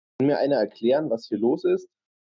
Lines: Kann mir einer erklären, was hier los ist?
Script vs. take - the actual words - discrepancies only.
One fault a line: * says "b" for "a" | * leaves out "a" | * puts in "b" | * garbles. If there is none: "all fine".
all fine